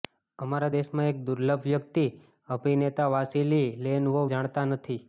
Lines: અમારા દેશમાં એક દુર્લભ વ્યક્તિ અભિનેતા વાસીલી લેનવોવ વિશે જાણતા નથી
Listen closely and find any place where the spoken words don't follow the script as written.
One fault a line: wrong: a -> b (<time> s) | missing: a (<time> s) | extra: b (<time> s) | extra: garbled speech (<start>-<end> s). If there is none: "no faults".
missing: વિશે (4.3 s)